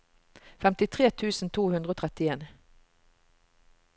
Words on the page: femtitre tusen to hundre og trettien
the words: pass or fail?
pass